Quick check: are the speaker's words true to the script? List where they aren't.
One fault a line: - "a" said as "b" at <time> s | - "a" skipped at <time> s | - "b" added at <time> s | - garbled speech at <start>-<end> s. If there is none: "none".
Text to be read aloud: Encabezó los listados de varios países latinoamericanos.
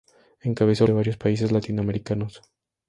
- "los listados" skipped at 0.9 s